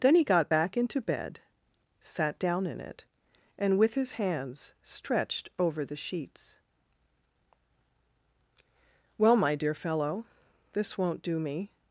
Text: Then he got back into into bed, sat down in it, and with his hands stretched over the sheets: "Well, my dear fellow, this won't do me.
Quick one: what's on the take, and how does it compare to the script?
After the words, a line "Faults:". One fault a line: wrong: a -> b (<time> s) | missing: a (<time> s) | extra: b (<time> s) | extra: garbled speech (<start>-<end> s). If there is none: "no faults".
Then he got back into bed, sat down in it, and with his hands stretched over the sheets: "Well, my dear fellow, this won't do me.
Faults:
missing: into (1.0 s)